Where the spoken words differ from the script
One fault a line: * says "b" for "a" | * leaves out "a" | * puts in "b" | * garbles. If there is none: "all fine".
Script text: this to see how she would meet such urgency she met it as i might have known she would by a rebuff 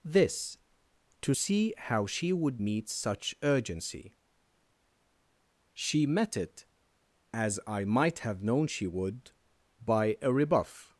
all fine